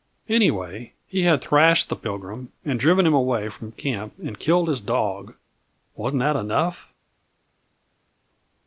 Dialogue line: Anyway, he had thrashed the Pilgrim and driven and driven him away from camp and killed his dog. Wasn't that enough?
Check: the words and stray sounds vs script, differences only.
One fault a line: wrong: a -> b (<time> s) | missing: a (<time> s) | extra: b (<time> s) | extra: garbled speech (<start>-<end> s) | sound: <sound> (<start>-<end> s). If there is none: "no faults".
missing: and driven (3.0 s)